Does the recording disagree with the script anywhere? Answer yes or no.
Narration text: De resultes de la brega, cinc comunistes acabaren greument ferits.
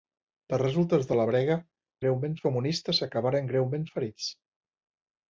yes